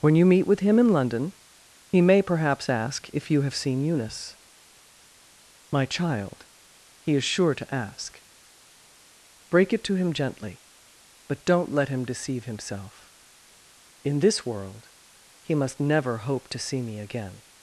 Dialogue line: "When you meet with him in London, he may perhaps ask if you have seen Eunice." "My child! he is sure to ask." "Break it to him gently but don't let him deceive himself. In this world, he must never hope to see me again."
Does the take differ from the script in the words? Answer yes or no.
no